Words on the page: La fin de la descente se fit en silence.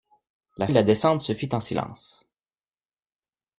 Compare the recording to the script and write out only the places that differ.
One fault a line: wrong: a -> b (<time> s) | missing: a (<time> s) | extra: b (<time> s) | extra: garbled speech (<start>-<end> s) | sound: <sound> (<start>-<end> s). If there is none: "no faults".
missing: fin (0.7 s)